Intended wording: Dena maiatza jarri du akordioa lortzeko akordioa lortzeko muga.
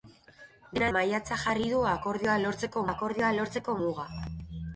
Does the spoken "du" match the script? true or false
true